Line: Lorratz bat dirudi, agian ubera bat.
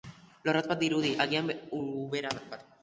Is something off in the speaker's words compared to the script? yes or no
no